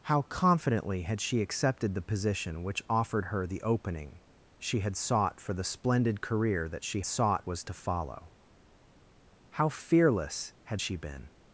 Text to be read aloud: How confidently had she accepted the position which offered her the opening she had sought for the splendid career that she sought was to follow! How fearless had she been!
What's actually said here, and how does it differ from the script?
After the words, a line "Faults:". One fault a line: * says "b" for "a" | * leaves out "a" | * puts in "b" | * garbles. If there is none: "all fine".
How confidently had she accepted the position which offered her the opening she had sought for the splendid career that she sought was to follow! How fearless had she been!
Faults:
all fine